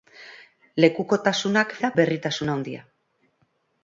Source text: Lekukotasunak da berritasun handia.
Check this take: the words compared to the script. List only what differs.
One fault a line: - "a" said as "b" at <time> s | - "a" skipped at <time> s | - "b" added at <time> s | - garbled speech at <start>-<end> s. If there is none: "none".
none